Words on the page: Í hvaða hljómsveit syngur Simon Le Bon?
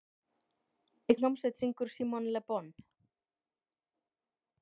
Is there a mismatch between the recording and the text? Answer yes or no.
yes